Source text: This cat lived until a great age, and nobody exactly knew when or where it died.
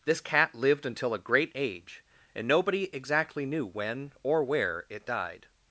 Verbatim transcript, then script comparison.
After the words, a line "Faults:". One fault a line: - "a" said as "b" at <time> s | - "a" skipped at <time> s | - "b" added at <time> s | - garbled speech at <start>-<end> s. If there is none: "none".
This cat lived until a great age, and nobody exactly knew when or where it died.
Faults:
none